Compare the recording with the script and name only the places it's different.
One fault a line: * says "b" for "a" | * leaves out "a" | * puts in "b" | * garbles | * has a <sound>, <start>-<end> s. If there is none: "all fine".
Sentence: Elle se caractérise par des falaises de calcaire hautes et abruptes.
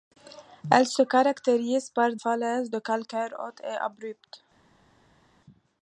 * leaves out "des"